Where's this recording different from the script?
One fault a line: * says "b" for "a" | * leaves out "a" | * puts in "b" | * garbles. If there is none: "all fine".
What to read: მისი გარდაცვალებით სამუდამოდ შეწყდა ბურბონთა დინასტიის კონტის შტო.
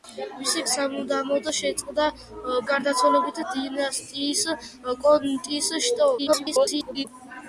* leaves out "გარდაცვალებით"
* says "გარდაცვალებით" for "ბურბონთა"
* garbles